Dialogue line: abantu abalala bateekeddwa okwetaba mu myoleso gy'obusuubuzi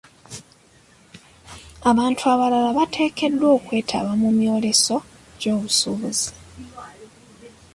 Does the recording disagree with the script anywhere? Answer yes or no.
no